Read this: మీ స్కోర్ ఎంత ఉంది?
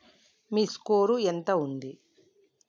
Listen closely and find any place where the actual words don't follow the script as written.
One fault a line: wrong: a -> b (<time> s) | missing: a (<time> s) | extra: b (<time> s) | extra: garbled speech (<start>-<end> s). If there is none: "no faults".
no faults